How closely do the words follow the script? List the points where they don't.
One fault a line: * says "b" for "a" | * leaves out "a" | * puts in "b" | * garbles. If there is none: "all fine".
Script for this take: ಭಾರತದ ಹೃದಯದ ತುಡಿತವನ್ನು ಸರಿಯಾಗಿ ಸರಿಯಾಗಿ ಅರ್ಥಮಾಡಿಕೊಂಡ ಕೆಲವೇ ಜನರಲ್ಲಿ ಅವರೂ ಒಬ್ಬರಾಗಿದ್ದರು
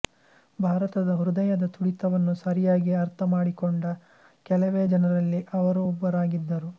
* leaves out "ಸರಿಯಾಗಿ"